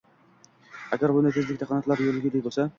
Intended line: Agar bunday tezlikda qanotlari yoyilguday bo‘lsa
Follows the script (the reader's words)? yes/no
yes